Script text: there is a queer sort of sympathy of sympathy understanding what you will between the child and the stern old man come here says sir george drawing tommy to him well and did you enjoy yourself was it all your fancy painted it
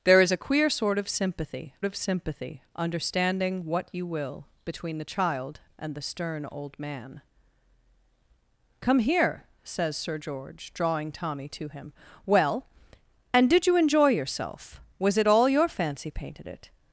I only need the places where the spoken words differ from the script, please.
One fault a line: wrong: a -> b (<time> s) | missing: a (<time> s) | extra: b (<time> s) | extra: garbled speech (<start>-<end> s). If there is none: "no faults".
no faults